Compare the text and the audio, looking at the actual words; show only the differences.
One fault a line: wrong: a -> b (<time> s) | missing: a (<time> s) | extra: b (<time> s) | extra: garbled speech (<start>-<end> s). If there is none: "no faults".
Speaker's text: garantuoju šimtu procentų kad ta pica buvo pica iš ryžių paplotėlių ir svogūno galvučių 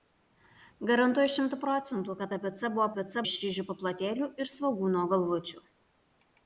no faults